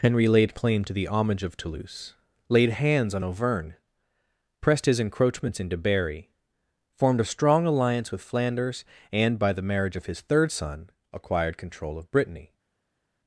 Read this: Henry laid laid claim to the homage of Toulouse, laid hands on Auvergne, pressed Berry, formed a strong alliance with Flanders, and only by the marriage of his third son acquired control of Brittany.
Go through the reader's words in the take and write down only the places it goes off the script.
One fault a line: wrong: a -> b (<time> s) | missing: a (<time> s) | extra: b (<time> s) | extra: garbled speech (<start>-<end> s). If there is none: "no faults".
missing: laid (0.6 s)
extra: his encroachments into (4.8 s)
missing: only (9.4 s)